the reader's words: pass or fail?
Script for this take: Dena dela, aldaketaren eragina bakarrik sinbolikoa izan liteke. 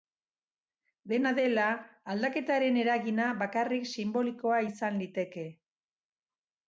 pass